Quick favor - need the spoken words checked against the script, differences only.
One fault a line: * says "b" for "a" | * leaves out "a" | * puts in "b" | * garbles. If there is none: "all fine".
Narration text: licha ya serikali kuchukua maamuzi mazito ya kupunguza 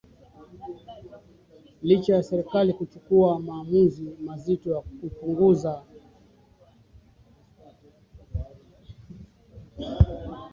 all fine